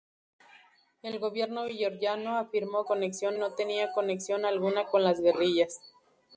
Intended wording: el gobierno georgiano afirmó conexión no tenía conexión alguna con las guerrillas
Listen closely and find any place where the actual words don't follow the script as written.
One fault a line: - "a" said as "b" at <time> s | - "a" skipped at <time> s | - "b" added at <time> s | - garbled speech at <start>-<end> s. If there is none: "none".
none